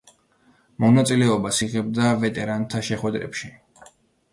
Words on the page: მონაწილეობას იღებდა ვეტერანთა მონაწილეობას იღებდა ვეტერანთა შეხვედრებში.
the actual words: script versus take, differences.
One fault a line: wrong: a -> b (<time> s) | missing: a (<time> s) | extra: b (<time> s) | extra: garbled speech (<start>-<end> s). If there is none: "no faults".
missing: მონაწილეობას იღებდა ვეტერანთა (2.9 s)